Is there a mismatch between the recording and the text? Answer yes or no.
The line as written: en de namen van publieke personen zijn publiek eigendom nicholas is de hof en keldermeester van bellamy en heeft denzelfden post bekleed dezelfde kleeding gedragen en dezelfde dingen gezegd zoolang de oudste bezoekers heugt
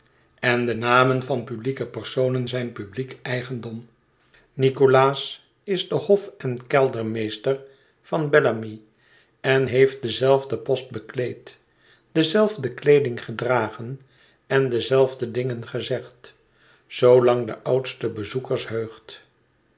no